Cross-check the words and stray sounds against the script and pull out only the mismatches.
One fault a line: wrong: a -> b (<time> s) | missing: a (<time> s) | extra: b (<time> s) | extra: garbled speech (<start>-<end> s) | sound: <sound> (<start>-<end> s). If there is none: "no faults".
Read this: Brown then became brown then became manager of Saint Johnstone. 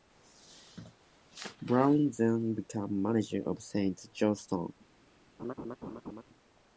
missing: brown then became (3.0 s)
sound: laugh (5.4-6.2 s)